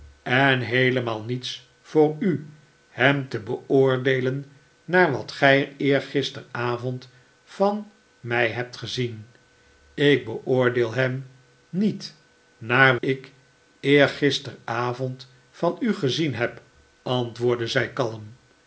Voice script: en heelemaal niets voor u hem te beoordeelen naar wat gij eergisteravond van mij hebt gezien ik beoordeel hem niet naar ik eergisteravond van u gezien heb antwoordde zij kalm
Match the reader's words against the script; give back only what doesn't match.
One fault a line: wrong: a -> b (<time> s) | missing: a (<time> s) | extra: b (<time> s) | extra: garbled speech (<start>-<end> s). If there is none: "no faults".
no faults